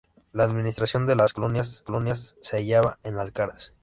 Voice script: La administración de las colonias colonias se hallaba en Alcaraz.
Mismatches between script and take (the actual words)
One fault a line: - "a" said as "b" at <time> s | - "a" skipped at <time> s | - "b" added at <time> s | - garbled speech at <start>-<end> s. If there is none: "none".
none